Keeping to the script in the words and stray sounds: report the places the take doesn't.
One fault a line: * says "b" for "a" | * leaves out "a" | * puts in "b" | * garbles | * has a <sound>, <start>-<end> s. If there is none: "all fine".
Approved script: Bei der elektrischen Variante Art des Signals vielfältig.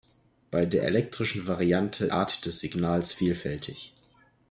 all fine